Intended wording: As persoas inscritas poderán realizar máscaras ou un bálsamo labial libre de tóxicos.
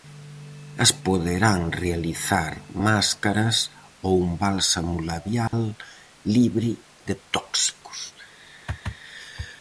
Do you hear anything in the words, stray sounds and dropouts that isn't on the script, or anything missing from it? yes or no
yes